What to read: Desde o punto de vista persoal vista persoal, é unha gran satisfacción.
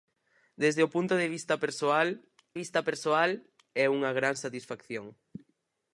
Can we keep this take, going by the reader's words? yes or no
yes